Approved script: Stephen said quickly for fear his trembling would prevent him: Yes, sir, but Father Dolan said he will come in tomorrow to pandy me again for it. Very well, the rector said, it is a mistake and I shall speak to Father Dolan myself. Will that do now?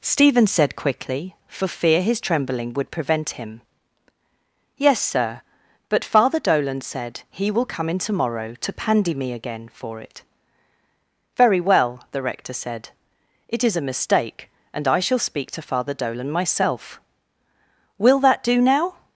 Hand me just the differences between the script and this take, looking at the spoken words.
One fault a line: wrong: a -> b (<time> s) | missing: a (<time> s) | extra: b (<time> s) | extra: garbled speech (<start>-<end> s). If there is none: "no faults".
no faults